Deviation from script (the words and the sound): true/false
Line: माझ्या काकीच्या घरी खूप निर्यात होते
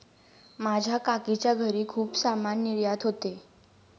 true